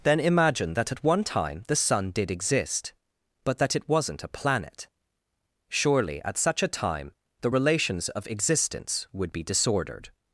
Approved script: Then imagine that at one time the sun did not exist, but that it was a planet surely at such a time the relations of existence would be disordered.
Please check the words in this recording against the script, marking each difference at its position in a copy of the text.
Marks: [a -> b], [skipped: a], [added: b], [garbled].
Then imagine that at one time the sun did [skipped: not] exist, but that it [was -> wasn't] a planet surely at such a time the relations of existence would be disordered.